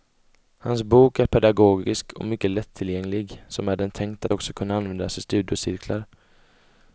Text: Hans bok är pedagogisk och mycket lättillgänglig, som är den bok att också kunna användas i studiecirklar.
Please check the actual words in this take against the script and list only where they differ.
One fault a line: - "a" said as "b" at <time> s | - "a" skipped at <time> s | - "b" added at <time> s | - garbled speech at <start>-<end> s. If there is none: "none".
- "bok" said as "tänkt" at 3.9 s